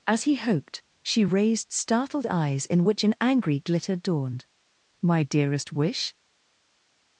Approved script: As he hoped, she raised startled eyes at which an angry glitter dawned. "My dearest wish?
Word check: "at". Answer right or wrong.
wrong